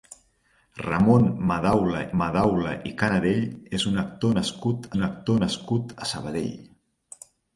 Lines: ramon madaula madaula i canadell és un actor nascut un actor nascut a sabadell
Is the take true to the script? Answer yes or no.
yes